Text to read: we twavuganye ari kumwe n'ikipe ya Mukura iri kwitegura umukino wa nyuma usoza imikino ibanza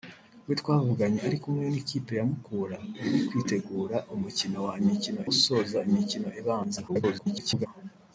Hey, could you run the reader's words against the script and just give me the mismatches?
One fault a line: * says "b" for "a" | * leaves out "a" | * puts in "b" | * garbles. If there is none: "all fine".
* says "imikino" for "nyuma"
* garbles